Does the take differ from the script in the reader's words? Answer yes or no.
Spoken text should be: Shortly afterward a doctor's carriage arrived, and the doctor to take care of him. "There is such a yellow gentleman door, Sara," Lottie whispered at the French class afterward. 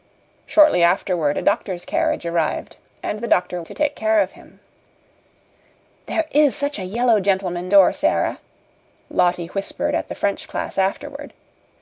no